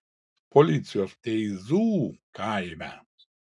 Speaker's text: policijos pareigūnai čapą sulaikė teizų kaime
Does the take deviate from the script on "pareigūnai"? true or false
true